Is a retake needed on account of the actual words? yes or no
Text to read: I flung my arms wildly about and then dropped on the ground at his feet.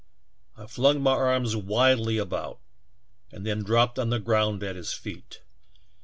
no